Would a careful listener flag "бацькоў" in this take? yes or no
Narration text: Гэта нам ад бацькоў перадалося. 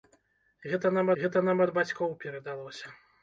no